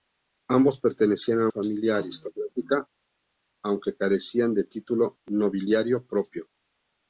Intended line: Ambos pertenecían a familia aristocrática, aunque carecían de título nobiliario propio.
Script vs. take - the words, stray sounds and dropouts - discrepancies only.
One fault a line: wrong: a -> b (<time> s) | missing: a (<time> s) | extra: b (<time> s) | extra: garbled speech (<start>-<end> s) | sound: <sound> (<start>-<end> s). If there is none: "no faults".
no faults